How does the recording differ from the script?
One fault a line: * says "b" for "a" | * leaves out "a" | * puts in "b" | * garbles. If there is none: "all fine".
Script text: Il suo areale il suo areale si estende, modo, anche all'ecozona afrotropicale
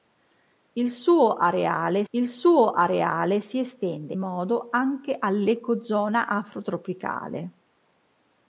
all fine